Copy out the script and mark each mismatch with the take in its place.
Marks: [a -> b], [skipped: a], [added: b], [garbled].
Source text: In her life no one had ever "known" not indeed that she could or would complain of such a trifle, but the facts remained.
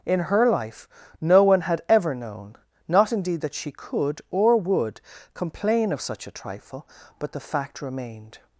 In her life no one had ever "known" not indeed that she could or would complain of such a trifle, but the [facts -> fact] remained.